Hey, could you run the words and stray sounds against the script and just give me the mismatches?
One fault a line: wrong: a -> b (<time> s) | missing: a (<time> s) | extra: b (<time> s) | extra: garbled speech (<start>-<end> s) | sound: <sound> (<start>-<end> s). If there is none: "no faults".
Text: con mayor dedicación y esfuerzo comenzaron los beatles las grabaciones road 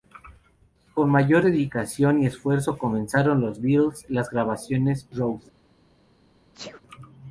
sound: sneeze (6.5-6.8 s)